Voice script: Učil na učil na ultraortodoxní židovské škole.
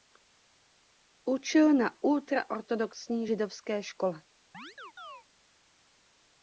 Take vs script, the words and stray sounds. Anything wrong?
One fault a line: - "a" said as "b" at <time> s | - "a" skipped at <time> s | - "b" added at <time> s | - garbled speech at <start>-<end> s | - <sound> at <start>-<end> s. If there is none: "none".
- "učil na" skipped at 2.0 s
- chirp at 4.5-5.2 s